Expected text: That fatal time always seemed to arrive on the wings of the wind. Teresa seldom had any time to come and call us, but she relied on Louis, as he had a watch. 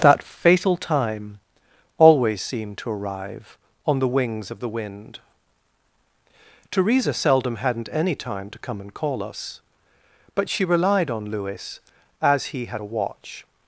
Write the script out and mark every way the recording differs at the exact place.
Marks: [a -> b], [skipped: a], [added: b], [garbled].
That fatal time always seemed to arrive on the wings of the wind. Teresa seldom [had -> hadn't] any time to come and call us, but she relied on Louis, as he had a watch.